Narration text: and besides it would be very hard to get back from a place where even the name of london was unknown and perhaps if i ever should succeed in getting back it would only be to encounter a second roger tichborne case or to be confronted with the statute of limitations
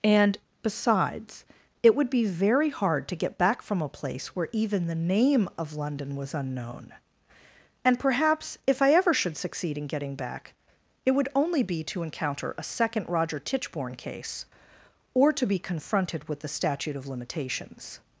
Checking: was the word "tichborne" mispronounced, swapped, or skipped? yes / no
no